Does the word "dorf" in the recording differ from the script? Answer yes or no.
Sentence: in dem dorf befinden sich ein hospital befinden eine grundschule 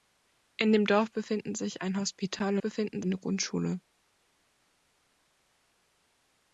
no